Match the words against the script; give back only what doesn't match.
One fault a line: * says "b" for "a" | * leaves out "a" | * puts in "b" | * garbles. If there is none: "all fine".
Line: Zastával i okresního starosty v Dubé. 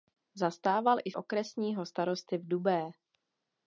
all fine